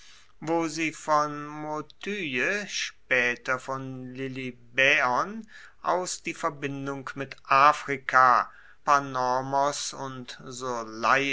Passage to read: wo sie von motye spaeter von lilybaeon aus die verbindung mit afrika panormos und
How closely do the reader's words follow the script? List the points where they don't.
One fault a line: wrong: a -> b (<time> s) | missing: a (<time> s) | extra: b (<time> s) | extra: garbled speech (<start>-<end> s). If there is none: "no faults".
no faults